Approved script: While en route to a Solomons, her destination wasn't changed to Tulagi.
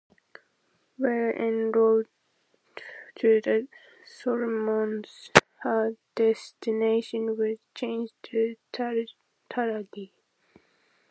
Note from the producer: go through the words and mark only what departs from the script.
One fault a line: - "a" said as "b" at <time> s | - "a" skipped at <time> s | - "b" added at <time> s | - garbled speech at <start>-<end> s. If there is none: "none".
- "a" said as "the" at 3.4 s
- "wasn't" said as "was" at 7.4 s